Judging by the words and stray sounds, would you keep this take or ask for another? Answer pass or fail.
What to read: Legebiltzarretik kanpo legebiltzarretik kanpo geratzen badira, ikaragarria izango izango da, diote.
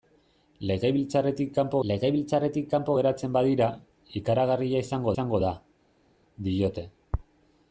pass